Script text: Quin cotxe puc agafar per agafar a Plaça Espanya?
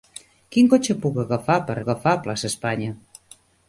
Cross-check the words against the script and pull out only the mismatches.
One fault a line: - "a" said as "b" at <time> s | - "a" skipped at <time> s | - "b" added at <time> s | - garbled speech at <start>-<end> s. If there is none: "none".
none